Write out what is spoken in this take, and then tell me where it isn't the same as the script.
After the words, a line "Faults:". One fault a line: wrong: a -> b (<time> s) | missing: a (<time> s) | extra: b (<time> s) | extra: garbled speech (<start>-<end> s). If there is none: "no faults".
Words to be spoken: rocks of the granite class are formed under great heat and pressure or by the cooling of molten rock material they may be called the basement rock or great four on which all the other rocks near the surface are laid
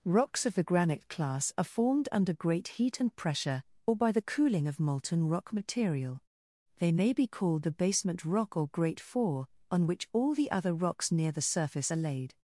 rocks of the granite class are formed under great heat and pressure or by the cooling of molten rock material they may be called the basement rock or great four on which all the other rocks near the surface are laid
Faults:
no faults